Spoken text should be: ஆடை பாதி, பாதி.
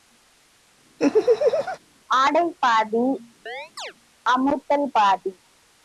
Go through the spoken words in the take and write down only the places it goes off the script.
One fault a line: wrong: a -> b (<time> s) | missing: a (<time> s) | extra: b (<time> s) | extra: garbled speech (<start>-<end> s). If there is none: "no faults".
extra: அமுத்தல் (4.3 s)